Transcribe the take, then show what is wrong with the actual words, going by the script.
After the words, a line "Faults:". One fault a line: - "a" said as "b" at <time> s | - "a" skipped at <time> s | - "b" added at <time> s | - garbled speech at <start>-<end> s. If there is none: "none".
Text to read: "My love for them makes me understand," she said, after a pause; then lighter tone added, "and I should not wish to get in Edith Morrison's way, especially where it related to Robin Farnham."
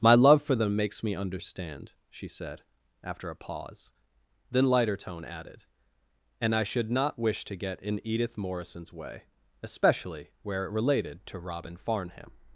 "My love for them makes me understand," she said, after a pause; then lighter tone added, "and I should not wish to get in Edith Morrison's way, especially where it related to Robin Farnham."
Faults:
none